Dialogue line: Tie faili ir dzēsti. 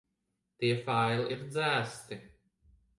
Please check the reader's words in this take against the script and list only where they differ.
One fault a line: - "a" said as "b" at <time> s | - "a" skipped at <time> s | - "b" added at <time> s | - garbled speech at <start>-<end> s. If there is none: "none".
none